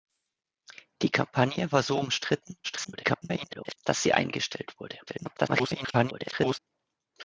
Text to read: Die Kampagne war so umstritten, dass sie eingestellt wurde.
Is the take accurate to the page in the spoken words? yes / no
no